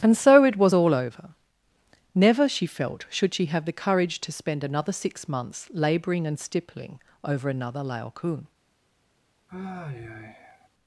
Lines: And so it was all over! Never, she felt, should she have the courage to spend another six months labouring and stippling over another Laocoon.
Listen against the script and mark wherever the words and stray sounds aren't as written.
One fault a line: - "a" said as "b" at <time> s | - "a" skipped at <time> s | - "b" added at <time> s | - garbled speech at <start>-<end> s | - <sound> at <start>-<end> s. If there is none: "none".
- sigh at 9.5-10.7 s